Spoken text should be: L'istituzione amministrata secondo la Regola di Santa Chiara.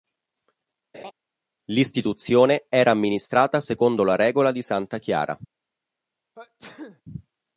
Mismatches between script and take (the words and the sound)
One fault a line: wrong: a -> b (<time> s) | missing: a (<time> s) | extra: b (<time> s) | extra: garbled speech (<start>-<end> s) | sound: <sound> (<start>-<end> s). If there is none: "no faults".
sound: laugh (0.9-1.1 s)
extra: era (2.7 s)
sound: sneeze (6.4-7.0 s)